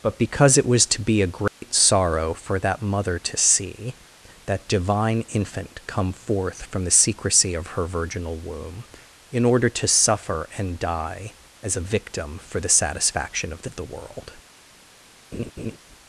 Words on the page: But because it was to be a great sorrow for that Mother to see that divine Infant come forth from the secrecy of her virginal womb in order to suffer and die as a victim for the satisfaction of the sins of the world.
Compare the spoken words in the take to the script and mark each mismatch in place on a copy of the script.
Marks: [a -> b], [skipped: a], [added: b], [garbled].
But because it was to be a great sorrow for that Mother to see that divine Infant come forth from the secrecy of her virginal womb in order to suffer and die as a victim for the satisfaction of the [skipped: sins] of the world.